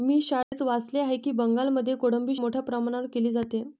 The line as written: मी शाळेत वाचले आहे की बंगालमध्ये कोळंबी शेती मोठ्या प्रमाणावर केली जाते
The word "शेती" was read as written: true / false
false